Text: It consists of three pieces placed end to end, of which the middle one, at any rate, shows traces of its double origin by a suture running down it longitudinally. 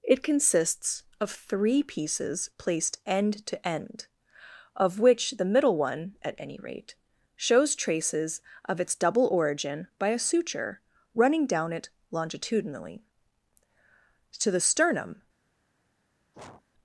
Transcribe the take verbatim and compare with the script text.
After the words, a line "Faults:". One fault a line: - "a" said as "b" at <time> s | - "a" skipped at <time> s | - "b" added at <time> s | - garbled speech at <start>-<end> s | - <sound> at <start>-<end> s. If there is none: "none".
It consists of three pieces placed end to end, of which the middle one, at any rate, shows traces of its double origin by a suture running down it longitudinally. To the sternum
Faults:
- "To the sternum" added at 14.4 s
- sneeze at 16.3-16.6 s